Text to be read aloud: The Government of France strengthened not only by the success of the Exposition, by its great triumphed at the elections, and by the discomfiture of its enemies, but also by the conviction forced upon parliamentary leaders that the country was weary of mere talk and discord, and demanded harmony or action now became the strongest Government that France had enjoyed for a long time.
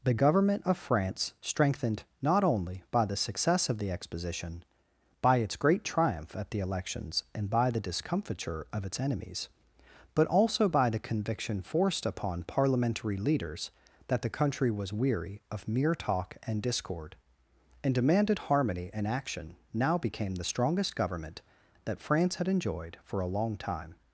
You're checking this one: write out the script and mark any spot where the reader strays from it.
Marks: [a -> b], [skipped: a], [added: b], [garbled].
The Government of France strengthened not only by the success of the Exposition, by its great [triumphed -> triumph] at the elections, and by the discomfiture of its enemies, but also by the conviction forced upon parliamentary leaders that the country was weary of mere talk and discord, and demanded harmony [or -> and] action now became the strongest Government that France had enjoyed for a long time.